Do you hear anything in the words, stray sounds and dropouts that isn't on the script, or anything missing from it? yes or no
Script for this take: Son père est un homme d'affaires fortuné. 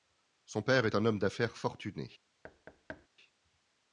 yes